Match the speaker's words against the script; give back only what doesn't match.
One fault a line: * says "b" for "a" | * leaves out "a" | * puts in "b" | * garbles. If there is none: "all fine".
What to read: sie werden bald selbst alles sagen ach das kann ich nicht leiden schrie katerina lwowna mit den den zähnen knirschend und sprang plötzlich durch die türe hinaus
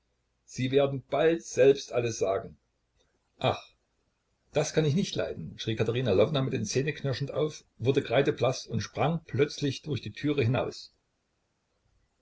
* leaves out "den"
* puts in "auf wurde kreideblaß"